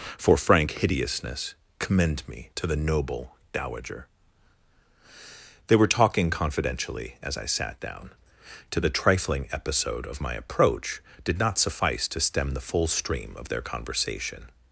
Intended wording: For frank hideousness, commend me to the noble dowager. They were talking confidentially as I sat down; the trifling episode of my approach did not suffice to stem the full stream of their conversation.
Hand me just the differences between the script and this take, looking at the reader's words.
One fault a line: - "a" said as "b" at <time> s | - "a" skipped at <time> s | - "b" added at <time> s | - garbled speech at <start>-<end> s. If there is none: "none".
- "to" added at 8.7 s